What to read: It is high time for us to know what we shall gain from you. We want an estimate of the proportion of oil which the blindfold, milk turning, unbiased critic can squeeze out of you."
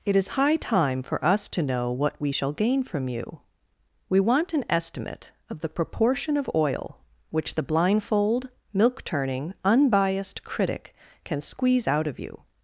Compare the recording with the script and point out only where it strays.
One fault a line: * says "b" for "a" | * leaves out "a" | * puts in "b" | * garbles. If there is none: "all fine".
all fine